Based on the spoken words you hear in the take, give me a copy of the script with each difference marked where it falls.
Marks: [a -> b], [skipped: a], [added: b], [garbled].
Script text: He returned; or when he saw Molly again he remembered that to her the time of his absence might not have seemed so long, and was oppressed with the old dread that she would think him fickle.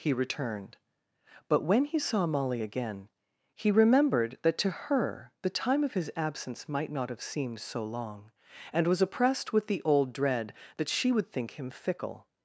He returned; [or -> but] when he saw Molly again he remembered that to her the time of his absence might not have seemed so long, and was oppressed with the old dread that she would think him fickle.